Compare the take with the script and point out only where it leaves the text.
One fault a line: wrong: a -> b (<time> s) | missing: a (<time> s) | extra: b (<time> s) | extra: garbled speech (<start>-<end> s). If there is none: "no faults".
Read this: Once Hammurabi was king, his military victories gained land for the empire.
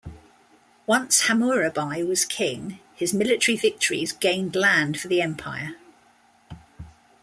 no faults